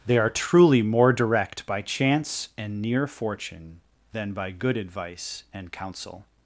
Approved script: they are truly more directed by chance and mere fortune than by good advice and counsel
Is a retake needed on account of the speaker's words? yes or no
yes